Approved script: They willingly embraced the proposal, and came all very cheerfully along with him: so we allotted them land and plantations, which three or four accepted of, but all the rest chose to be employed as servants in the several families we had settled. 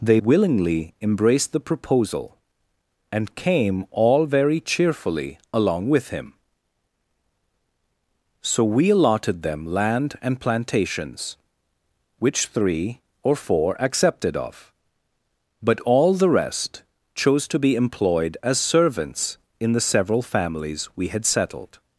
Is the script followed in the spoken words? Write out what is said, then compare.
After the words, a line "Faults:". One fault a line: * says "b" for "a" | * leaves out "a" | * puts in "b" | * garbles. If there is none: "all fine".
They willingly embraced the proposal, and came all very cheerfully along with him: so we allotted them land and plantations, which three or four accepted of, but all the rest chose to be employed as servants in the several families we had settled.
Faults:
all fine